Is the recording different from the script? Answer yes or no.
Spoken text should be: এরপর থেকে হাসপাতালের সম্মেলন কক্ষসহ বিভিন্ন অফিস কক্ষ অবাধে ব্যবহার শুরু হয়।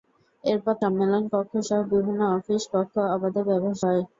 yes